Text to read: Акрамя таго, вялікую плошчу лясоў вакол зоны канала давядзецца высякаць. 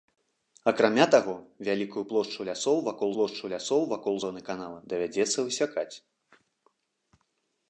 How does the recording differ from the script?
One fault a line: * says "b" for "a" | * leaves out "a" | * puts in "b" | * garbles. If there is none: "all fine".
* puts in "плошчу лясоў вакол"